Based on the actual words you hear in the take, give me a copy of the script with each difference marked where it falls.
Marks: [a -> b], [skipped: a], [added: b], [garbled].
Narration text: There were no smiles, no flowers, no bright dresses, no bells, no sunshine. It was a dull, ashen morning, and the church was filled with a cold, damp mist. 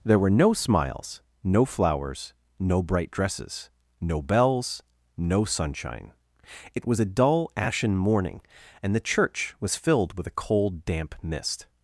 There were no smiles, no flowers, no bright dresses, no bells, no sunshine. It was a dull, ashen morning, and the church was filled with a cold, damp mist.